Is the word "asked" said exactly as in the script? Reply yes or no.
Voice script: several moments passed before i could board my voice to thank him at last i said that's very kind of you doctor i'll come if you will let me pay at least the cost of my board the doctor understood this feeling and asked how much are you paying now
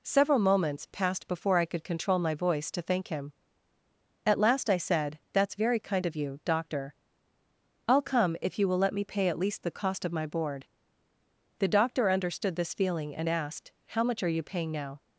yes